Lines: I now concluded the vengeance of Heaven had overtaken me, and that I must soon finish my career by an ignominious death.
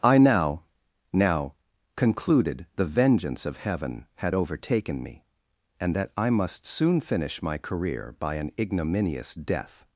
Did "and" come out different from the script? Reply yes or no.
no